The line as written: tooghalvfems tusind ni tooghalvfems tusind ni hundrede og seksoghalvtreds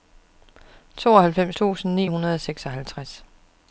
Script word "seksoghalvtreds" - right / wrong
right